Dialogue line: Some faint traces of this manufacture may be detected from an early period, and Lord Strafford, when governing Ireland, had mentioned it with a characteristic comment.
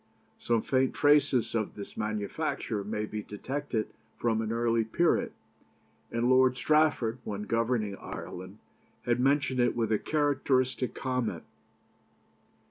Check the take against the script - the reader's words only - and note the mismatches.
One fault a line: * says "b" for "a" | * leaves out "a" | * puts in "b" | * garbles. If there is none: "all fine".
all fine